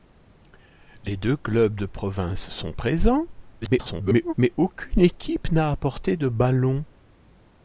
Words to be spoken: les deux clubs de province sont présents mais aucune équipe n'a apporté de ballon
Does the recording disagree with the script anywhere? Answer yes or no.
yes